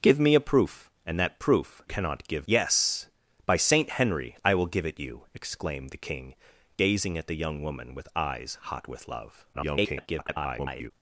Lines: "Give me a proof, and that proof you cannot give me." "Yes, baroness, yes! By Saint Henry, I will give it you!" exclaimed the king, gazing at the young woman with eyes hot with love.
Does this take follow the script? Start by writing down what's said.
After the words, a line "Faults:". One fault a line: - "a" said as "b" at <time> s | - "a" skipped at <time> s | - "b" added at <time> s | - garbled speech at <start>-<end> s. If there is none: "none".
"Give me a proof, and that proof cannot give yes! By Saint Henry, I will give it you!" exclaimed the king, gazing at the young woman with eyes hot with love. [garbled]
Faults:
- "you" skipped at 1.8 s
- "me Yes baroness" skipped at 2.5 s
- garbled speech at 9.5-10.9 s